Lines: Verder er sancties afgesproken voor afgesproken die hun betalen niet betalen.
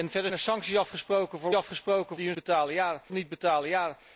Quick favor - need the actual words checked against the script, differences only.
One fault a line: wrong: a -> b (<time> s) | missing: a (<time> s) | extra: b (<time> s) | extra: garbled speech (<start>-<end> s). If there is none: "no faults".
no faults